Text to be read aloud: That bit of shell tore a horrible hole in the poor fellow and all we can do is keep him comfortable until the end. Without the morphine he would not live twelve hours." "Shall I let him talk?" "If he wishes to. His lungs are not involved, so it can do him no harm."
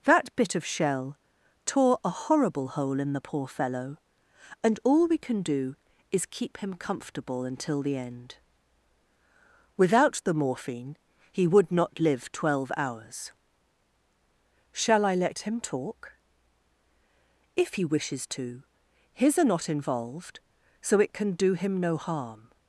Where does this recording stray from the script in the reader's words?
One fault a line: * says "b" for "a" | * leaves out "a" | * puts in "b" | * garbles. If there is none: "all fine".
* leaves out "lungs"